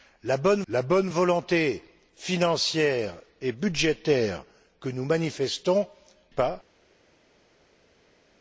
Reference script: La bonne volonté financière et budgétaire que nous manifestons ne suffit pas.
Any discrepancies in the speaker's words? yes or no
yes